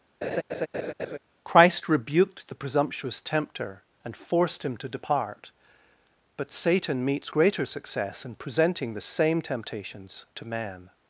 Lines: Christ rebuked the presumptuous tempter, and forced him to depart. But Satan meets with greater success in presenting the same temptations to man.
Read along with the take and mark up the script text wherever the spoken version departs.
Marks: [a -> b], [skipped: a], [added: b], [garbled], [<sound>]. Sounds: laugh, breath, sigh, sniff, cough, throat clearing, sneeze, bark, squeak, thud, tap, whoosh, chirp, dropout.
[laugh] Christ rebuked the presumptuous tempter, and forced him to depart. But Satan meets [skipped: with] greater success in presenting the same temptations to man.